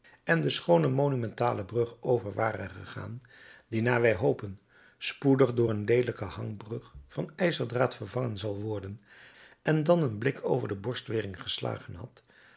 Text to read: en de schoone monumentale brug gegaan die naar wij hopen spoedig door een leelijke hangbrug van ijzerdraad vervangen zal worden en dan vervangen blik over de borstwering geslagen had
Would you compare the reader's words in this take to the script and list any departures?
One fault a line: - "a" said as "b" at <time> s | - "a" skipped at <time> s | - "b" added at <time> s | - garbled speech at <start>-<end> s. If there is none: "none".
- "over ware" added at 2.0 s
- "vervangen" said as "een" at 10.0 s